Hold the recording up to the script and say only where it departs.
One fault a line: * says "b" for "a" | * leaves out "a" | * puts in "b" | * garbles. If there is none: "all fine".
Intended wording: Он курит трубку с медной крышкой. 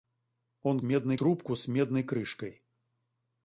* says "медной" for "курит"